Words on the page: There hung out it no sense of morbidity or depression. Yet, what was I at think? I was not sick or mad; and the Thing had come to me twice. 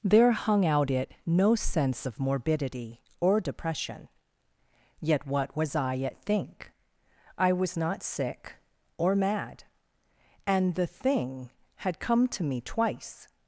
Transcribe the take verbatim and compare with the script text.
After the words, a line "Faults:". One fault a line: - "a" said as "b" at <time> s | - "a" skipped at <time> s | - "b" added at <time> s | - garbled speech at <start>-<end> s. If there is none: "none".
There hung out it no sense of morbidity or depression. Yet, what was I at think? I was not sick or mad; and the Thing had come to me twice.
Faults:
none